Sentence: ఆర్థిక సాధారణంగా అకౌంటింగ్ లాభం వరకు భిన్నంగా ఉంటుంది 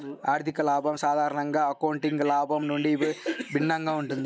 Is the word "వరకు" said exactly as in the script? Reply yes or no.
no